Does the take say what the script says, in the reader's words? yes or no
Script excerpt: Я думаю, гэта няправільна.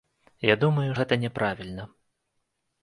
yes